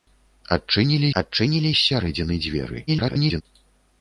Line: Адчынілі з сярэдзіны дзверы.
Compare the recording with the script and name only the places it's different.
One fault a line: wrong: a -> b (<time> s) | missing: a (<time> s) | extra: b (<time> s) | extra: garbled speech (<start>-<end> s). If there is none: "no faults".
extra: адчынілі (1.2 s)
extra: garbled speech (2.9-3.4 s)